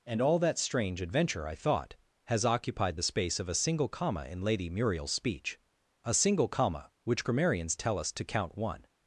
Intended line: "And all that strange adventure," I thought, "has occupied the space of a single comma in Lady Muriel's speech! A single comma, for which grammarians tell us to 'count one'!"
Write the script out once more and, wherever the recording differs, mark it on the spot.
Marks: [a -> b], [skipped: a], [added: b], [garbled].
"And all that strange adventure," I thought, "has occupied the space of a single comma in Lady Muriel's speech! A single comma, [skipped: for] which grammarians tell us to 'count one'!"